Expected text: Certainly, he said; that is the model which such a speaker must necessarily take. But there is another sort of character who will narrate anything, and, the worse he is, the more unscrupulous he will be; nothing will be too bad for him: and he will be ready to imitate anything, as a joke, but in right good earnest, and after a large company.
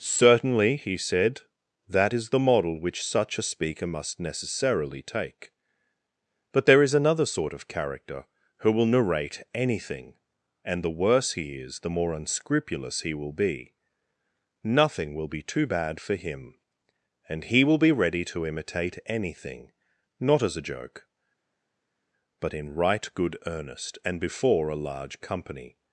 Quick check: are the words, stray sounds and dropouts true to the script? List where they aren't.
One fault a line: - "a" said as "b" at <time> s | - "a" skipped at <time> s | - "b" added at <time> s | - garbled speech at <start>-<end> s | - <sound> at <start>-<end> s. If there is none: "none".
- "not" added at 20.2 s
- "after" said as "before" at 24.2 s